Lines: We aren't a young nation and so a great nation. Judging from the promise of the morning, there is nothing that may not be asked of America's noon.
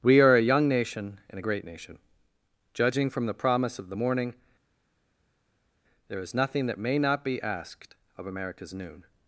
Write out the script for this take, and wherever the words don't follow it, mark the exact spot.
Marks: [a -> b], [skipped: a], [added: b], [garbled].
We [aren't -> are] a young nation and [skipped: so] a great nation. Judging from the promise of the morning, there is nothing that may not be asked of America's noon.